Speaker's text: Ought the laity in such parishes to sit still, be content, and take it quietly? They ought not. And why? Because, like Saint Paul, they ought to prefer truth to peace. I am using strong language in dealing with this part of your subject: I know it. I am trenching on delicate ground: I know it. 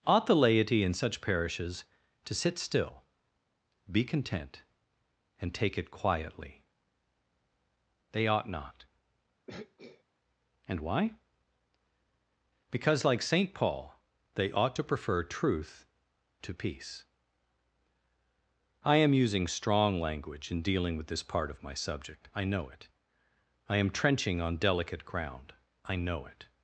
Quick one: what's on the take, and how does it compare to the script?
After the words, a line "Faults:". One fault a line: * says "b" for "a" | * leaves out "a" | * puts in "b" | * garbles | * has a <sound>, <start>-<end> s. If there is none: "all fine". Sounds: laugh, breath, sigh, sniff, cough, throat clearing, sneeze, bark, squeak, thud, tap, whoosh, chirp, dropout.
Ought the laity in such parishes to sit still, be content, and take it quietly? They ought not. And why? Because, like Saint Paul, they ought to prefer truth to peace. I am using strong language in dealing with this part of my subject: I know it. I am trenching on delicate ground: I know it.
Faults:
* has a throat clearing, 9.5-10.0 s
* says "my" for "your"